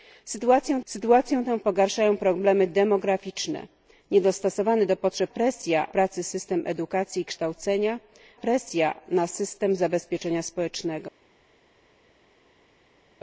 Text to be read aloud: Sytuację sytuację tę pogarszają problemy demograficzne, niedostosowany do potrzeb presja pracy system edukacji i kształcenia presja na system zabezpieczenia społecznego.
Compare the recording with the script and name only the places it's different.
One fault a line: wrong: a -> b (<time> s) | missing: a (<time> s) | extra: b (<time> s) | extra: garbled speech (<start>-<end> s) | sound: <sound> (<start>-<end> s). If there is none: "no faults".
no faults